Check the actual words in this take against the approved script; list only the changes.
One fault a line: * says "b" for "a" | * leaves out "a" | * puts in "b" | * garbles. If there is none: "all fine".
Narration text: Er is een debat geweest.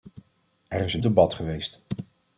all fine